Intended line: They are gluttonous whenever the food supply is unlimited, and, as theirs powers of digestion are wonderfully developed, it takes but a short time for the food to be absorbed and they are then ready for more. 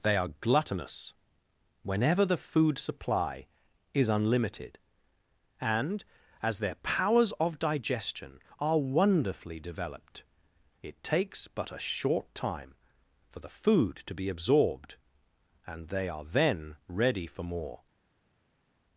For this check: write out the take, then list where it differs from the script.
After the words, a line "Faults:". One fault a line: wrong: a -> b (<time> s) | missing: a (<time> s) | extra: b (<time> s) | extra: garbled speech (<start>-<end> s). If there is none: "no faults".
They are gluttonous whenever the food supply is unlimited, and, as their powers of digestion are wonderfully developed, it takes but a short time for the food to be absorbed and they are then ready for more.
Faults:
wrong: theirs -> their (6.6 s)